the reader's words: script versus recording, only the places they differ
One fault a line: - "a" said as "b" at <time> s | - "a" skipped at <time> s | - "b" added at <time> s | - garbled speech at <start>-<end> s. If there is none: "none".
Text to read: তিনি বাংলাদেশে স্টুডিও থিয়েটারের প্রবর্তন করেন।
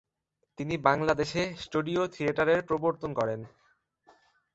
none